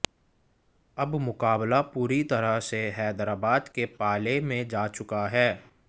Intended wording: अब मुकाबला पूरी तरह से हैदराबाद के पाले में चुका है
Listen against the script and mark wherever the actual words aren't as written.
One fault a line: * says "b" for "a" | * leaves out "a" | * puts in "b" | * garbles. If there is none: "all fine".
* puts in "जा"